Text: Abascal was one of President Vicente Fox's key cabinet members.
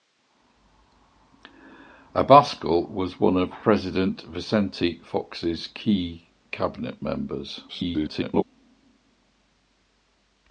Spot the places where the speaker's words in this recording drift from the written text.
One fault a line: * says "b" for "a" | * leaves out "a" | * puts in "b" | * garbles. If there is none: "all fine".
* garbles